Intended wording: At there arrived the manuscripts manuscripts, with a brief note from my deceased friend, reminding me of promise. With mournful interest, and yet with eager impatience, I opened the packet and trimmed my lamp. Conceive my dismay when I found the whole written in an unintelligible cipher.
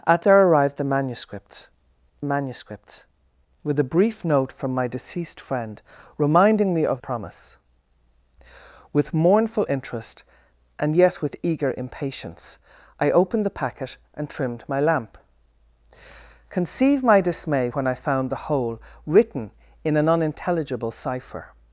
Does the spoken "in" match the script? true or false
true